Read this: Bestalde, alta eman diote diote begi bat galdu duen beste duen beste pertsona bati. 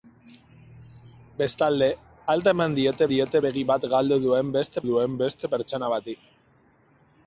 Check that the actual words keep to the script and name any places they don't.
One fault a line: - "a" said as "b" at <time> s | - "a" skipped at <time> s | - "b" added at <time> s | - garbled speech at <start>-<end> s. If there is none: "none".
none